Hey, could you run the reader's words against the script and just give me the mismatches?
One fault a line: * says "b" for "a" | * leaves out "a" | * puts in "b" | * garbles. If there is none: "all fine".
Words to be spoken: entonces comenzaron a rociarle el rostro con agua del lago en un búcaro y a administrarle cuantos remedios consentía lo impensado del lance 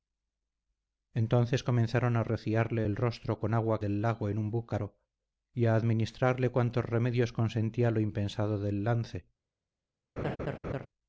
all fine